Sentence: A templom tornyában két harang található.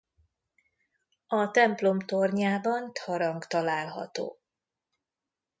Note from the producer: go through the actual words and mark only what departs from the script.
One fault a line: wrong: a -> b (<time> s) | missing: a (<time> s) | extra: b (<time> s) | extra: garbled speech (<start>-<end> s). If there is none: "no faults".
missing: két (2.9 s)